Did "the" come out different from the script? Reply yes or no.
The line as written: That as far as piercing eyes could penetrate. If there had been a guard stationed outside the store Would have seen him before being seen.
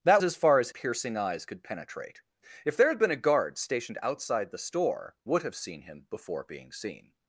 no